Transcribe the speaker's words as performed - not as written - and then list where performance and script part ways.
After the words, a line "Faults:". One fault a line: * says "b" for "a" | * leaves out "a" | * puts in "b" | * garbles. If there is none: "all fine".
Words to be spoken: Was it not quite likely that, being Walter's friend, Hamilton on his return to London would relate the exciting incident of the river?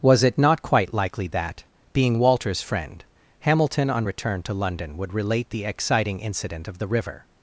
Was it not quite likely that, being Walter's friend, Hamilton on return to London would relate the exciting incident of the river?
Faults:
* leaves out "his"